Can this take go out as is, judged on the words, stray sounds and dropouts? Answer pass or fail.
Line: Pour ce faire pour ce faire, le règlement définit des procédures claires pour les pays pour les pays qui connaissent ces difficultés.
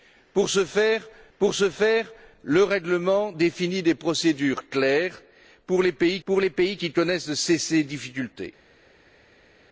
pass